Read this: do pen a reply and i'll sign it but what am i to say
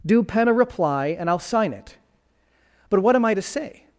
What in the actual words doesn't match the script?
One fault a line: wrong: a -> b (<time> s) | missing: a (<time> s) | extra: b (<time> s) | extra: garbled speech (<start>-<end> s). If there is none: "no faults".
no faults